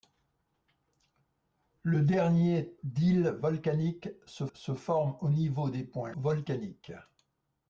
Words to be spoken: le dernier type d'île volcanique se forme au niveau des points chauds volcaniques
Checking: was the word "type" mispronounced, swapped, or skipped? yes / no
yes